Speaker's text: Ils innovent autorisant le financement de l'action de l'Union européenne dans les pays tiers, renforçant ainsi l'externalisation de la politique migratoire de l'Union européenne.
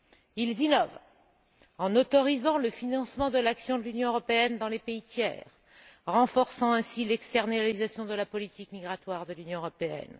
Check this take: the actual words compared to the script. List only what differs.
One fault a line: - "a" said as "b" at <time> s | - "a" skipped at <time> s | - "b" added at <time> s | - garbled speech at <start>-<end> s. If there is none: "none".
- "en" added at 1.8 s